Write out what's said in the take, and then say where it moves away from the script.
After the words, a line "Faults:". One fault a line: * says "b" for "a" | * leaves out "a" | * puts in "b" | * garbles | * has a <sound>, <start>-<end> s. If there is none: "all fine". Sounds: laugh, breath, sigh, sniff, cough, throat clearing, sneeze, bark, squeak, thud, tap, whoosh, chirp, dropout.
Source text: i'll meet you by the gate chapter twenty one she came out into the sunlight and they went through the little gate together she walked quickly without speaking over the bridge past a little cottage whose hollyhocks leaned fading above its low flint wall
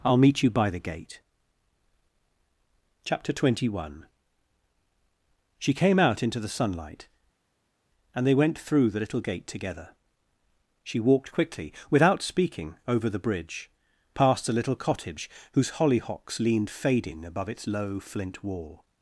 i'll meet you by the gate chapter twenty one she came out into the sunlight and they went through the little gate together she walked quickly without speaking over the bridge past a little cottage whose hollyhocks leaned fading above its low flint wall
Faults:
all fine